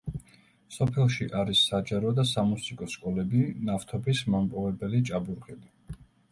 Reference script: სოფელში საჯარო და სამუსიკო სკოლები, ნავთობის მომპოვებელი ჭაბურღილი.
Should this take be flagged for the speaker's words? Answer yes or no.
yes